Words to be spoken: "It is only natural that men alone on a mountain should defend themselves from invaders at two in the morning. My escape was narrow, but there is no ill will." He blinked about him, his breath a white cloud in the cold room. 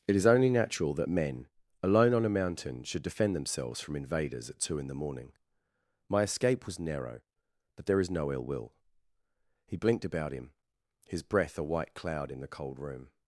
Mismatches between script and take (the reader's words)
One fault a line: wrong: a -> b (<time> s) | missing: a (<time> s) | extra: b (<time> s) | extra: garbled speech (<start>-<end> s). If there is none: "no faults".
no faults